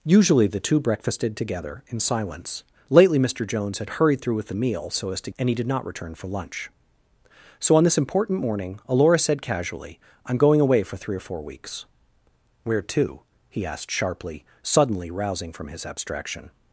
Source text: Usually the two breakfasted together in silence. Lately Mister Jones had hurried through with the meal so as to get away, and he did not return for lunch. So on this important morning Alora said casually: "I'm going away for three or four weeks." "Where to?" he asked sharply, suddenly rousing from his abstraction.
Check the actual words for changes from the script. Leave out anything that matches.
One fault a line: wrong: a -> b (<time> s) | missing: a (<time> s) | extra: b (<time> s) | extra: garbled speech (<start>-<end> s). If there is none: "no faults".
missing: get away (5.3 s)